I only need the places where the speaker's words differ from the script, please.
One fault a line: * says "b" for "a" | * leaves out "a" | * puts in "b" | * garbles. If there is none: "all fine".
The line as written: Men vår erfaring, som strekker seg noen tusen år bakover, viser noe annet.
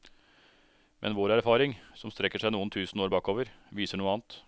all fine